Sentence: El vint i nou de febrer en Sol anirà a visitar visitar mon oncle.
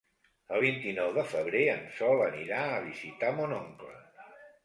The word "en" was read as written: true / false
true